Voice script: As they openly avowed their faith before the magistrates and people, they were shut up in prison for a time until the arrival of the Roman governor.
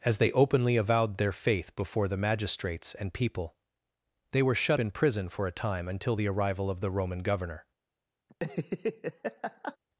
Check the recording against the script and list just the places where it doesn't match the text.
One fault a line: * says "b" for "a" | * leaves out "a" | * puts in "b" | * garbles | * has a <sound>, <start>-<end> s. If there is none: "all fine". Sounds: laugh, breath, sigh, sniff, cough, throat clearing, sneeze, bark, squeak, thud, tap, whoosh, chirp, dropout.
* leaves out "up"
* has a laugh, 8.3-9.8 s